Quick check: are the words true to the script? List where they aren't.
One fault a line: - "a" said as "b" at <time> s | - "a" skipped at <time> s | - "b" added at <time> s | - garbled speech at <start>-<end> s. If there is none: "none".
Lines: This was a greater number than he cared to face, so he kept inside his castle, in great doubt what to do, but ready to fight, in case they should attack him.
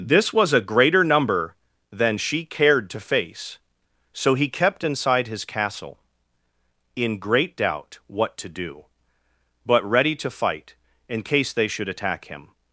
- "he" said as "she" at 2.2 s